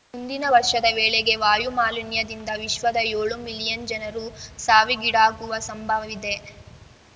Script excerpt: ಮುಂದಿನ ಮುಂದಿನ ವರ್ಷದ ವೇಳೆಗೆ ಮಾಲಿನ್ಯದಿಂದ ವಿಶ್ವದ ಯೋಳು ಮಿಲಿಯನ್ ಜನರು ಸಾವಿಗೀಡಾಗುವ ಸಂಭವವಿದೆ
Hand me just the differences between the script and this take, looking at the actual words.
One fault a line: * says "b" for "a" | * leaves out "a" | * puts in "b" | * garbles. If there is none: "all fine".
* leaves out "ಮುಂದಿನ"
* puts in "ವಾಯು"